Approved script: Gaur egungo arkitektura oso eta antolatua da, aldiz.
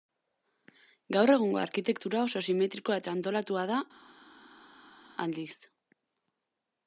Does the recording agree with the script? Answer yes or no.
no